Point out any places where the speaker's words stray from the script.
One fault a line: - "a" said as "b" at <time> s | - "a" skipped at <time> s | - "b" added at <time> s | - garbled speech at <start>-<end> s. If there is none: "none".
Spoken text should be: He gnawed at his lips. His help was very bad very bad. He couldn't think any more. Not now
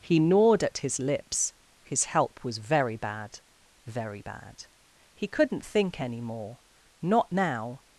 none